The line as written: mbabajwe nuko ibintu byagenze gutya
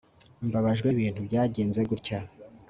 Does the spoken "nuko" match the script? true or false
false